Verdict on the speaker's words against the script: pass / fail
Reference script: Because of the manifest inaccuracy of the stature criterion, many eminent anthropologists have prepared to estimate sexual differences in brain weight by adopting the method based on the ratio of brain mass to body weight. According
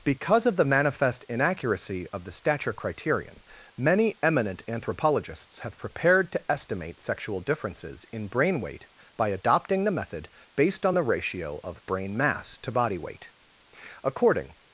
pass